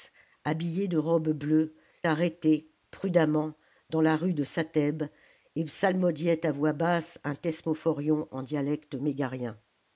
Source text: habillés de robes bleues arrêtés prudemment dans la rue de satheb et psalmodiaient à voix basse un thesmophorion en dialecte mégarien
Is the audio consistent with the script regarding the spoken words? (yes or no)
yes